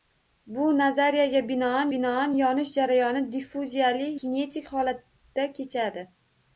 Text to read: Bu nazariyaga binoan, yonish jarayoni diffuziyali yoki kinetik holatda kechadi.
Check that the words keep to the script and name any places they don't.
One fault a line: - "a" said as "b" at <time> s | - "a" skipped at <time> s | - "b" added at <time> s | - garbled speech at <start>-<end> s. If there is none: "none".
- "binoan" added at 1.9 s
- "yoki" skipped at 4.1 s